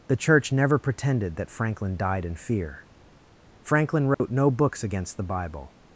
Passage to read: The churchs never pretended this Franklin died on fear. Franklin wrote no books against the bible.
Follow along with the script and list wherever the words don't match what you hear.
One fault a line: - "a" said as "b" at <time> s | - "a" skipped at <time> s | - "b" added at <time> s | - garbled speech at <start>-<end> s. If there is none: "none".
- "churchs" said as "church" at 0.1 s
- "this" said as "that" at 1.4 s
- "on" said as "in" at 2.2 s